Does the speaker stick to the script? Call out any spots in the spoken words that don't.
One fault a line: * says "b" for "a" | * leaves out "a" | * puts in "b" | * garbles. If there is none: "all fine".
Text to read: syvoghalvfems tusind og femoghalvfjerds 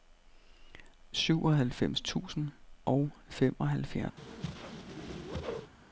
all fine